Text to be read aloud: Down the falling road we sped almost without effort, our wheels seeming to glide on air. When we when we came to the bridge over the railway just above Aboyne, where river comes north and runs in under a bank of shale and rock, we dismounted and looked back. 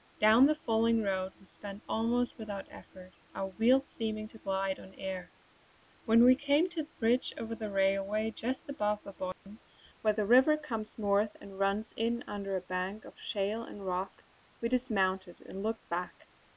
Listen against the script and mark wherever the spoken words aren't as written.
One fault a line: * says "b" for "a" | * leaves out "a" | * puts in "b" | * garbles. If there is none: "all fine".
* leaves out "when we"
* puts in "the"